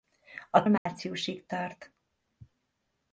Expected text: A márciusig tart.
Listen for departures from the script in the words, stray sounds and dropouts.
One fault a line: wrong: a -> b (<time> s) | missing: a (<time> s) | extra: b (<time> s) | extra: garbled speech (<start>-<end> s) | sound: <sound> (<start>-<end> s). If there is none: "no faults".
sound: dropout (0.8-0.9 s)